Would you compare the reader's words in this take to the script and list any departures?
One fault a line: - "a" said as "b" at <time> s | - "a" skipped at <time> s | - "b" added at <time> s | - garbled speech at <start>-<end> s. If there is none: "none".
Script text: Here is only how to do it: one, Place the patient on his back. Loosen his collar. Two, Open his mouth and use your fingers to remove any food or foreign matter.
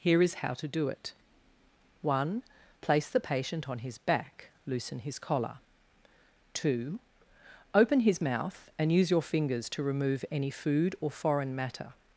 - "only" skipped at 0.4 s